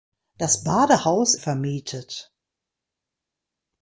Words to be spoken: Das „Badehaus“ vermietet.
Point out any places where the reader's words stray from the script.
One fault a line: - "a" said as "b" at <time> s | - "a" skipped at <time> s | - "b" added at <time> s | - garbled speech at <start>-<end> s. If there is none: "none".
none